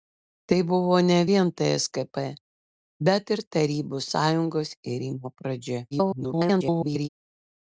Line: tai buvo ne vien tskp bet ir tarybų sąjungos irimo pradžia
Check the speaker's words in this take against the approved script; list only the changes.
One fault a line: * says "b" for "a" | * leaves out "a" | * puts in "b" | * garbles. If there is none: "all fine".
* garbles